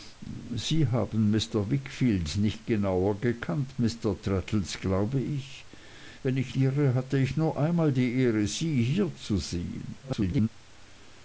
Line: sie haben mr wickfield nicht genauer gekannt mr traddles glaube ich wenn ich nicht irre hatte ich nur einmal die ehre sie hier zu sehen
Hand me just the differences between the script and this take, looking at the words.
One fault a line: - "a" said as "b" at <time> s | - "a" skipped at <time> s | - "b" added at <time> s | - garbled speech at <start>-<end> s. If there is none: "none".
- "nicht" skipped at 6.5 s
- garbled speech at 10.0-10.5 s